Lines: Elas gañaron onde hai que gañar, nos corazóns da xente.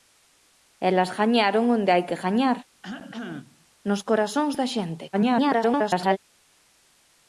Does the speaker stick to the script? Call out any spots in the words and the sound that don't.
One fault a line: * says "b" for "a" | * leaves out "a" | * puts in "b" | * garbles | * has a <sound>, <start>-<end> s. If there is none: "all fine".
* has a cough, 2.8-3.7 s
* garbles